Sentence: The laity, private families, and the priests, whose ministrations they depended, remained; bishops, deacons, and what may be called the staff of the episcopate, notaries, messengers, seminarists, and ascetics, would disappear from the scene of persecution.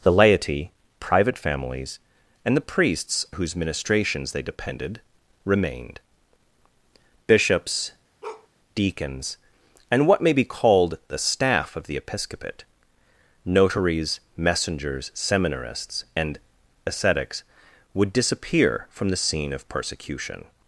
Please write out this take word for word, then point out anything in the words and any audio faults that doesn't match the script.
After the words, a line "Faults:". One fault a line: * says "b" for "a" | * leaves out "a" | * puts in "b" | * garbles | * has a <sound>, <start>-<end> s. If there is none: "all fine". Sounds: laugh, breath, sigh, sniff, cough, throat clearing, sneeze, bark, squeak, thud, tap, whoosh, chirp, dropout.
The laity, private families, and the priests, whose ministrations they depended, remained; bishops, deacons, and what may be called the staff of the episcopate, notaries, messengers, seminarists, and ascetics, would disappear from the scene of persecution.
Faults:
* has a bark, 8.2-8.5 s